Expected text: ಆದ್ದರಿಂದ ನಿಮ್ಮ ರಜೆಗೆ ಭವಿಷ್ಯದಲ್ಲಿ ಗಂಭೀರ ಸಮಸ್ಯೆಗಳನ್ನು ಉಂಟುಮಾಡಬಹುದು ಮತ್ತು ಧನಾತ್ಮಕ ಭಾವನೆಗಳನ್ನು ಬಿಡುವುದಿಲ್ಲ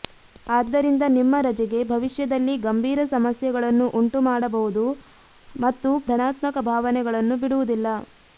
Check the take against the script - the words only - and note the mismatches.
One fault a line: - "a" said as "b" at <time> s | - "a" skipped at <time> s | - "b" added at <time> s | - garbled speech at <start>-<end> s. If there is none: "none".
none